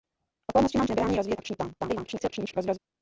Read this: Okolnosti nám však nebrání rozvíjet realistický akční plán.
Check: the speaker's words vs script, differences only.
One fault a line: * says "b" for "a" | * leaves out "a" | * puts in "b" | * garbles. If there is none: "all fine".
* leaves out "však"
* leaves out "realistický"
* garbles